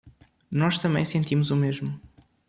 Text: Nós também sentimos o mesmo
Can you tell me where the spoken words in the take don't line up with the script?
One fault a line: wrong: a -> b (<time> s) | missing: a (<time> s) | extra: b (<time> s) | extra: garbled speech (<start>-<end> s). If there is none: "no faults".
no faults